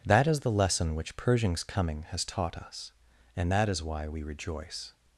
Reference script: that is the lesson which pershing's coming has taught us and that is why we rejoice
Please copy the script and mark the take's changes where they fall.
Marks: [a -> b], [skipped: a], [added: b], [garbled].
that is the lesson which pershing's coming has taught us and that is why we rejoice